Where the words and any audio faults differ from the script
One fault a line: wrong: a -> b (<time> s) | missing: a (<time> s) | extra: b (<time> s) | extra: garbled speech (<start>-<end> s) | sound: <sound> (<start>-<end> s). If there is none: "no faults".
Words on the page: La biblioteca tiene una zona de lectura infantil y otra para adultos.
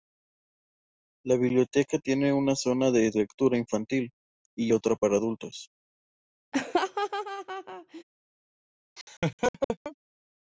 sound: laugh (6.5-8.0 s)
sound: laugh (9.0-10.0 s)